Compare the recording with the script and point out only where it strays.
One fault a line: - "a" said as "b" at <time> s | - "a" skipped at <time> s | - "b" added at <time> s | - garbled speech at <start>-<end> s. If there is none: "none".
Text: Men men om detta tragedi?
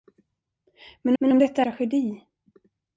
none